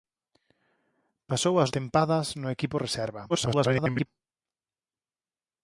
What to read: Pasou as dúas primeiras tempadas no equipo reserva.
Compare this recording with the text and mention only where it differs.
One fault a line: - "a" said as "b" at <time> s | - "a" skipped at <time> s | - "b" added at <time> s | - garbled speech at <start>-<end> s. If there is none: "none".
- "dúas primeiras" skipped at 1.7 s
- garbled speech at 3.3-4.1 s